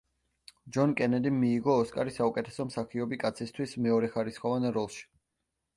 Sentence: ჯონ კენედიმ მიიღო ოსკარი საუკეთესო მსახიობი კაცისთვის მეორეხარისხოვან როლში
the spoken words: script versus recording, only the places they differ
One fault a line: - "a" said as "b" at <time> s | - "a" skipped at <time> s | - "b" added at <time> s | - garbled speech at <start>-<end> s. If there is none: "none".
none